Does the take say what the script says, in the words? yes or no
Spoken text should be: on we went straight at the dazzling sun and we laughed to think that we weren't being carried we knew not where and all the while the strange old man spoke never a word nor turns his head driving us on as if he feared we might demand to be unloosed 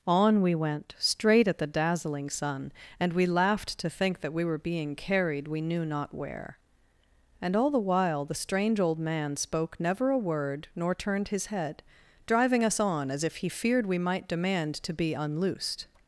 no